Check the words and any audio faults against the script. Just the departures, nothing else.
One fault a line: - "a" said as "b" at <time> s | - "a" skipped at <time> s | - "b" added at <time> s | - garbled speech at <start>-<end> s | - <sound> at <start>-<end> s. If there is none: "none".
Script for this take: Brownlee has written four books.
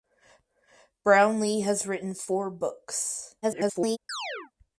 - garbled speech at 3.4-4.0 s
- chirp at 4.1-4.5 s